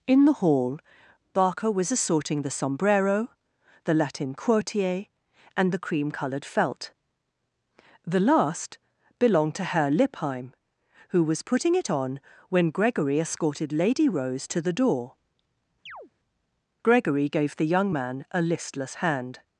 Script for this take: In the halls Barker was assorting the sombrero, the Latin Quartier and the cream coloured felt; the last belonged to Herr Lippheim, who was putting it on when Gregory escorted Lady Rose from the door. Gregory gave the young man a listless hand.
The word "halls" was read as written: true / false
false